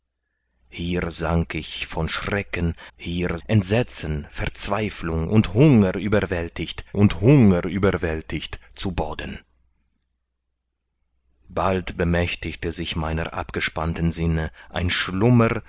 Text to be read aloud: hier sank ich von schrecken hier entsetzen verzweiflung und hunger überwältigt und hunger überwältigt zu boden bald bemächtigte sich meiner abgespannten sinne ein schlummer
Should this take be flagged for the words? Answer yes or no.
no